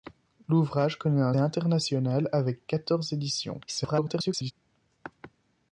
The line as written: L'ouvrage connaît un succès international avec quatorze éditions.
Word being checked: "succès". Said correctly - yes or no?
no